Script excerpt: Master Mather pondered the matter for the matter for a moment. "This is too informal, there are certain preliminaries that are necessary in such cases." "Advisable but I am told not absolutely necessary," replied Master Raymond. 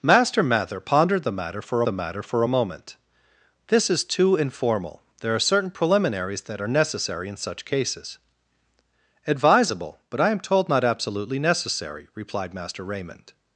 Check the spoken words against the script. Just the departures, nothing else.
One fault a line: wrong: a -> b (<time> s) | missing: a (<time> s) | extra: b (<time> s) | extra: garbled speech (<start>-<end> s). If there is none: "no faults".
no faults